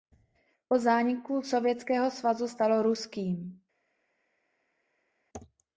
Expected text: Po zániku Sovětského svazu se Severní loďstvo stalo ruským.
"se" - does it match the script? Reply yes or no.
no